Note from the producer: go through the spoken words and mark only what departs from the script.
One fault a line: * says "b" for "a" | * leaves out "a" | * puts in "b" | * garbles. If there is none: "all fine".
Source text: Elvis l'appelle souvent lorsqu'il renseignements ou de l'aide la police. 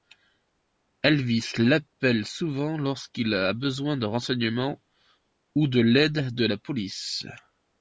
* puts in "a besoin de"
* puts in "de"